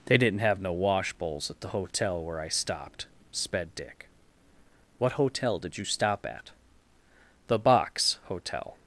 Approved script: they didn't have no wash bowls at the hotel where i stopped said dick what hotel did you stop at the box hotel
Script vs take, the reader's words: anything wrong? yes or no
yes